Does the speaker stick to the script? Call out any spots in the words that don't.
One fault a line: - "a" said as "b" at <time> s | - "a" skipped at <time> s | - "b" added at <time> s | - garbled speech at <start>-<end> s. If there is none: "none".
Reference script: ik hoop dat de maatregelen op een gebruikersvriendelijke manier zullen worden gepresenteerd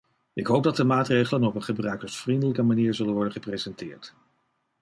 none